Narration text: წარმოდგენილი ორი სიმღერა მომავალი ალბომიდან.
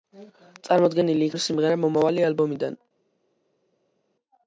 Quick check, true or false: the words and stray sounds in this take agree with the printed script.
true